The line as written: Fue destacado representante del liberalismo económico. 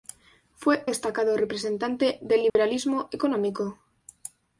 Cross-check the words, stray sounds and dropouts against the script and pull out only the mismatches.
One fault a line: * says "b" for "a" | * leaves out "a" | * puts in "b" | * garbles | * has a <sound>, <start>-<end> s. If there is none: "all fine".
* has a dropout, 2.5-2.6 s